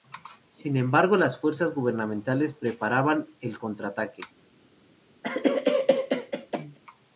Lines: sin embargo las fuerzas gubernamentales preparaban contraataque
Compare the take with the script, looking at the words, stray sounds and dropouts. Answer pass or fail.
fail